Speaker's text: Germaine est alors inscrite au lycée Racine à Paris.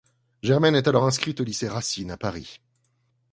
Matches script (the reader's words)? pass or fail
pass